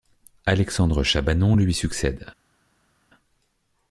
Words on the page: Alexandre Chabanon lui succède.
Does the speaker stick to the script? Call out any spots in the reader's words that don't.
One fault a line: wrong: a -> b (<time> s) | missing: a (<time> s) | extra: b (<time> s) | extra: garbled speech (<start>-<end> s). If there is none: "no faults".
no faults